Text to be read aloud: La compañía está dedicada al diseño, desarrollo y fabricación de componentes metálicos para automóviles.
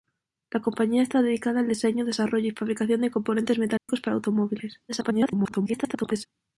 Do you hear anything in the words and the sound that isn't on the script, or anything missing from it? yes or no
yes